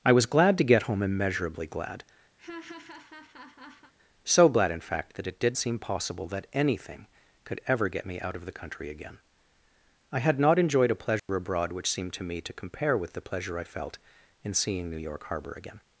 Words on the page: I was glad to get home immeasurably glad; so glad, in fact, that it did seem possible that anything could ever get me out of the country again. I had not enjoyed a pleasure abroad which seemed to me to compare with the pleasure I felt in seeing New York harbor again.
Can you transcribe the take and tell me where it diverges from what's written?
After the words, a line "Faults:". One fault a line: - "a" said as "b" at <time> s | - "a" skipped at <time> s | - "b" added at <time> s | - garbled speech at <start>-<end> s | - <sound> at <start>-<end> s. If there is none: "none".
I was glad to get home immeasurably glad; so glad, in fact, that it did seem possible that anything could ever get me out of the country again. I had not enjoyed a pleasure abroad which seemed to me to compare with the pleasure I felt in seeing New York harbor again.
Faults:
- laugh at 2.4-3.9 s
- dropout at 11.2-11.3 s